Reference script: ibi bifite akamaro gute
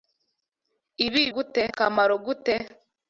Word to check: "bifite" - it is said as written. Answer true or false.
false